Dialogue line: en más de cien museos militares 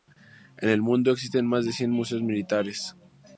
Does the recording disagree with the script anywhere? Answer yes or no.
yes